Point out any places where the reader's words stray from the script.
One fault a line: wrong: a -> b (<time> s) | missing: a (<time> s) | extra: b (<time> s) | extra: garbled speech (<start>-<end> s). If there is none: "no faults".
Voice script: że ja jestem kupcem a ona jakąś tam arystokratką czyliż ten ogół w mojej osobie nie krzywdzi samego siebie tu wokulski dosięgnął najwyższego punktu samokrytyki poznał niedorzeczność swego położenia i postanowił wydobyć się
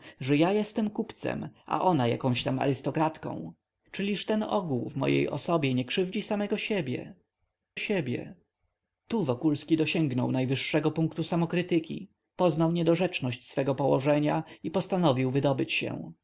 extra: siebie (7.8 s)